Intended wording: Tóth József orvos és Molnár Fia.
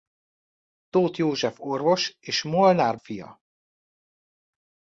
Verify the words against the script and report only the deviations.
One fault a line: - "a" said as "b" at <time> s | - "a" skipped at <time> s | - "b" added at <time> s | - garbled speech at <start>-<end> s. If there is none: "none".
none